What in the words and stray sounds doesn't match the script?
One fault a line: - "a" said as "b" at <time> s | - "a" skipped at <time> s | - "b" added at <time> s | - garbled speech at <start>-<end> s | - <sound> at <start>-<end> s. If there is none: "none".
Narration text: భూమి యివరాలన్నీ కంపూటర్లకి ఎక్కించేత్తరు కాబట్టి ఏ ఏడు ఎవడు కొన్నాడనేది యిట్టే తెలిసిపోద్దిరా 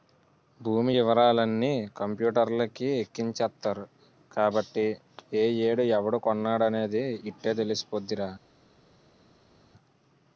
none